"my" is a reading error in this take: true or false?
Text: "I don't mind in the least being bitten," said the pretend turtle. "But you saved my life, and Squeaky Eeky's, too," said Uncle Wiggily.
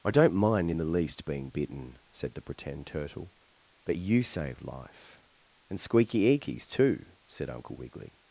true